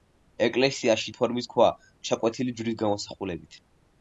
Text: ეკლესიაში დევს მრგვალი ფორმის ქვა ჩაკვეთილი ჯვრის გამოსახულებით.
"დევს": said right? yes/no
no